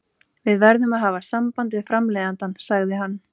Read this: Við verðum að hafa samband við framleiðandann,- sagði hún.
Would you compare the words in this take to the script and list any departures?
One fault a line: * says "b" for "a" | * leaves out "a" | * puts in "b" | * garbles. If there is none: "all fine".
* says "hann" for "hún"